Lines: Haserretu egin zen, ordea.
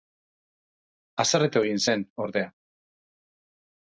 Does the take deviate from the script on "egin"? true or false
false